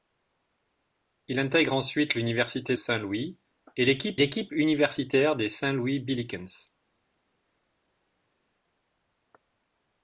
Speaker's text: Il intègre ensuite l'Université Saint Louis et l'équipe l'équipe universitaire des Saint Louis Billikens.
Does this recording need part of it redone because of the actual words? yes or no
no